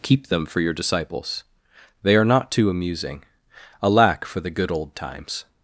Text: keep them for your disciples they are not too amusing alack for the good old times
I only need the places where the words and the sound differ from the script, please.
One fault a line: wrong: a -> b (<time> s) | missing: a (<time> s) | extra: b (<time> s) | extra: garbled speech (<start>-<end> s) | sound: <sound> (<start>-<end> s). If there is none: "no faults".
no faults